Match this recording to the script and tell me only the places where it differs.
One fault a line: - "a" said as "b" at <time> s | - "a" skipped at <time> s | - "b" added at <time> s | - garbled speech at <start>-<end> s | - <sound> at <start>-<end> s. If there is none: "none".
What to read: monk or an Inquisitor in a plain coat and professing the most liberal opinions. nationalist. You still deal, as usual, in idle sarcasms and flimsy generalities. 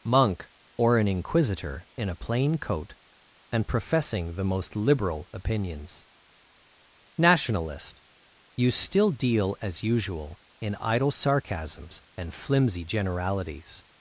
none